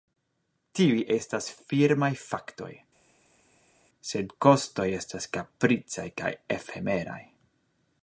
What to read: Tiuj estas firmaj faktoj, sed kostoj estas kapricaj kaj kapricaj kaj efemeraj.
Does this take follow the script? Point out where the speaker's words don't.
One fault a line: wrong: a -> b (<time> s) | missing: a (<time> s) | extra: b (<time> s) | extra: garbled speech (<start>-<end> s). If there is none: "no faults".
missing: kapricaj kaj (6.3 s)